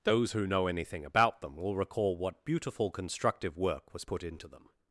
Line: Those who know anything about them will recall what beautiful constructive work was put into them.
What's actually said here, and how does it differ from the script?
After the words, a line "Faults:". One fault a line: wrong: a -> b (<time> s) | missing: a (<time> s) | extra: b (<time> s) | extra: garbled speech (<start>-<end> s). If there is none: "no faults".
Those who know anything about them will recall what beautiful constructive work was put into them.
Faults:
no faults